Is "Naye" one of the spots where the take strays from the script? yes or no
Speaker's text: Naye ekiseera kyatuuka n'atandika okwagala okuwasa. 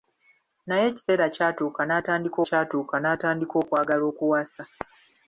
no